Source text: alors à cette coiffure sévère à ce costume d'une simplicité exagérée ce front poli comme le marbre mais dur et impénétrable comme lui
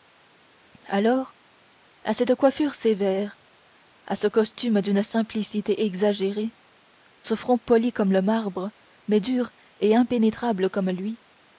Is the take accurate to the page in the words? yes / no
yes